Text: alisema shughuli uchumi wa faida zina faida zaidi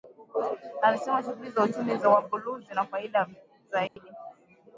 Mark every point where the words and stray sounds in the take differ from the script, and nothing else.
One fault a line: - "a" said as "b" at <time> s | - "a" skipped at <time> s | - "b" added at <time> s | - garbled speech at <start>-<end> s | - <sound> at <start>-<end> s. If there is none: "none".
- "za" added at 1.5 s
- "faida" said as "buluu" at 2.2 s
- dropout at 3.9-4.0 s